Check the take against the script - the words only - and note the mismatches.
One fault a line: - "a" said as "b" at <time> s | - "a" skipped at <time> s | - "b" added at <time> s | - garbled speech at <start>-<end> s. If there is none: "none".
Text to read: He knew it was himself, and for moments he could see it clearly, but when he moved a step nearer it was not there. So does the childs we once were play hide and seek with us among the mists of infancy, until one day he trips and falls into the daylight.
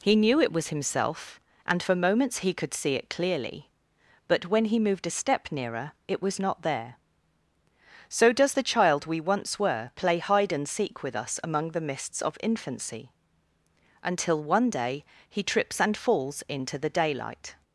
- "childs" said as "child" at 8.6 s